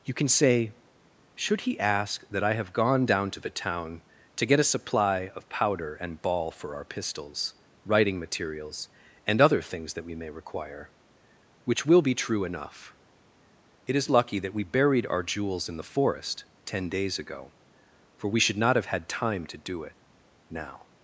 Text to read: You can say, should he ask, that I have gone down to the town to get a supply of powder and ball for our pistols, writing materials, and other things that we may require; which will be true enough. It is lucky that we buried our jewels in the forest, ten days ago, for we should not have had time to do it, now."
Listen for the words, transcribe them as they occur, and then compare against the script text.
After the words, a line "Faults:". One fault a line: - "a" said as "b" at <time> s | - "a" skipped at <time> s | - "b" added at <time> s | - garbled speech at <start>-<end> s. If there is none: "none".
You can say, should he ask, that I have gone down to the town to get a supply of powder and ball for our pistols, writing materials, and other things that we may require; which will be true enough. It is lucky that we buried our jewels in the forest, ten days ago, for we should not have had time to do it, now."
Faults:
none